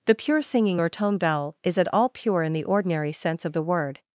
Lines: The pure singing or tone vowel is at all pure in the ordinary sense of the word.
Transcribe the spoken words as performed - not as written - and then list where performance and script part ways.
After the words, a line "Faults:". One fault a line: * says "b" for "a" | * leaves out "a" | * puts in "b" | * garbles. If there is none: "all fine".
The pure singing or tone vowel is at all pure in the ordinary sense of the word.
Faults:
all fine